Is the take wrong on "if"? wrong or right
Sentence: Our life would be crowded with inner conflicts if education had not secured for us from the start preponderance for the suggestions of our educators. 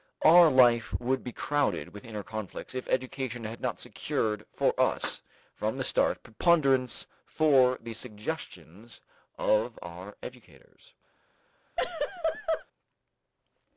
right